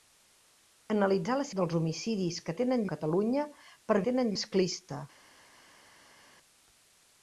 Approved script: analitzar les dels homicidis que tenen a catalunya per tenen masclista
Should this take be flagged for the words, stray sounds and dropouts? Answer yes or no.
no